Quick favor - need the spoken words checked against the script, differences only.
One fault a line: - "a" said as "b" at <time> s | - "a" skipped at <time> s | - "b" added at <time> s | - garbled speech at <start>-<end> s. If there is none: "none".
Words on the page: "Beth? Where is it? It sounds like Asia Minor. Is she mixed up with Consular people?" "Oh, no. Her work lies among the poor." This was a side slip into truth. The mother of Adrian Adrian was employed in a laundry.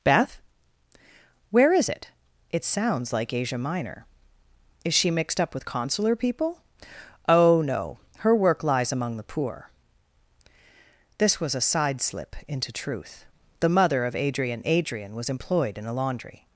none